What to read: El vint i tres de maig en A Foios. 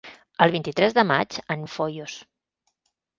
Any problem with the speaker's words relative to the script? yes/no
no